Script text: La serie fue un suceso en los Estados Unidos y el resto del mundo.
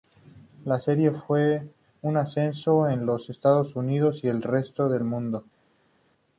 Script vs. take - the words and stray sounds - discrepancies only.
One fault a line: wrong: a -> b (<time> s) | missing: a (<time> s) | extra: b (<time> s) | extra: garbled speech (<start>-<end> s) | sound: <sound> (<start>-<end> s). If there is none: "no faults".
no faults